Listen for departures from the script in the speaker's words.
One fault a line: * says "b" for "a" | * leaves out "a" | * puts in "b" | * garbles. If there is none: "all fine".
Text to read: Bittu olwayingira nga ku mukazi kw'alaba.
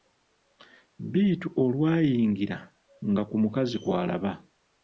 all fine